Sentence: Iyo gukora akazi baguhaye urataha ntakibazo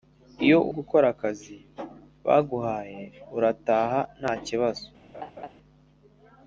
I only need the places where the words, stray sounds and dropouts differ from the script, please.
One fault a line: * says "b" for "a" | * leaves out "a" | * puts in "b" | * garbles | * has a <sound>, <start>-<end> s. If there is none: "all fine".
* has a laugh, 5.1-5.5 s